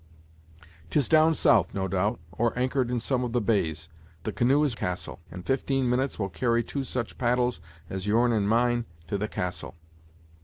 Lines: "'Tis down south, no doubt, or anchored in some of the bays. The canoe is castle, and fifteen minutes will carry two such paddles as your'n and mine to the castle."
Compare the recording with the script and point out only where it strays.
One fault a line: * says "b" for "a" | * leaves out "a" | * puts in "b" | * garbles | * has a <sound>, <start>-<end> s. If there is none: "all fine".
all fine